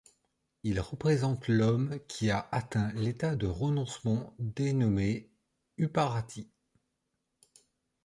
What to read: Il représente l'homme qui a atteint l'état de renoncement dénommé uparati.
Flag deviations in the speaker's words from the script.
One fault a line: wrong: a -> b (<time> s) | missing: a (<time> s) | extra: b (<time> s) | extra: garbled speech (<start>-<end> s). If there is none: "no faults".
no faults